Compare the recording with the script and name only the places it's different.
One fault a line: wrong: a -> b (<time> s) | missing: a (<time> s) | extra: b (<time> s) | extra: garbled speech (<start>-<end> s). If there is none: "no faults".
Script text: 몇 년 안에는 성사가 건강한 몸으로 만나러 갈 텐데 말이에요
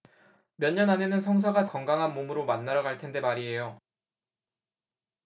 no faults